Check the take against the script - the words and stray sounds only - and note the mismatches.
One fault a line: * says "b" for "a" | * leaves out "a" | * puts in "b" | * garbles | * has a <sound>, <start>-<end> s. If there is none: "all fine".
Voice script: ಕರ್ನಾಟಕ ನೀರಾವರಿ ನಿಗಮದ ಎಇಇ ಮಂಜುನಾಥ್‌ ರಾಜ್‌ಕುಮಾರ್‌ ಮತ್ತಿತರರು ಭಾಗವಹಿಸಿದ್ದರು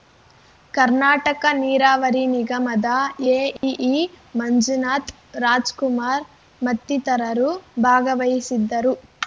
* has a dropout, 3.6-3.6 s